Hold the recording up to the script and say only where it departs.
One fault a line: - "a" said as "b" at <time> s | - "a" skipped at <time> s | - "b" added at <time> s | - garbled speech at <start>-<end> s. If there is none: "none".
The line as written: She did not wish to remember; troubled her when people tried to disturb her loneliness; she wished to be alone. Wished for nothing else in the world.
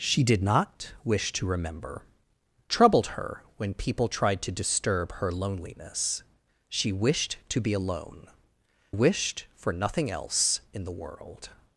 none